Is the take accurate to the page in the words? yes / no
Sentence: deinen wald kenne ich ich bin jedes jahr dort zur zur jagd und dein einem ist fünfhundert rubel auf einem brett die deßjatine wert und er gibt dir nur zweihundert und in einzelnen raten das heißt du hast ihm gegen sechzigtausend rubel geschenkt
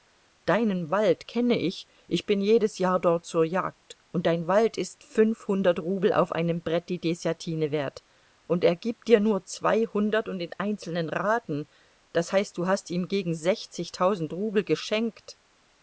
no